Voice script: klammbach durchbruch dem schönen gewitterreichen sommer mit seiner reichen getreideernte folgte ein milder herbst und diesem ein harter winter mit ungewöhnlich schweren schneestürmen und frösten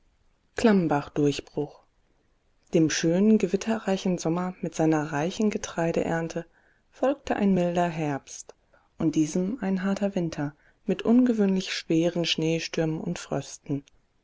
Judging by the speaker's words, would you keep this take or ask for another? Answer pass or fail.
pass